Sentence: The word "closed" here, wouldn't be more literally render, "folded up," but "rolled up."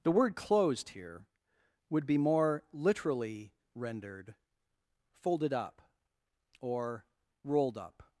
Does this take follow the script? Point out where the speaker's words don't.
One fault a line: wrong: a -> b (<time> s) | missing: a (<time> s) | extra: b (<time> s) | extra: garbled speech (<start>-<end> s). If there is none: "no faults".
wrong: wouldn't -> would (1.9 s)
wrong: render -> rendered (3.8 s)
wrong: but -> or (6.6 s)